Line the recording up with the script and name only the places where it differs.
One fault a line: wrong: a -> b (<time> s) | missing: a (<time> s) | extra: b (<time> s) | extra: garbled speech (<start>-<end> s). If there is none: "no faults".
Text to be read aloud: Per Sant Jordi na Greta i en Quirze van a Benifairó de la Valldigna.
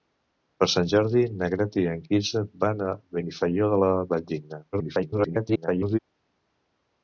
extra: garbled speech (4.7-6.0 s)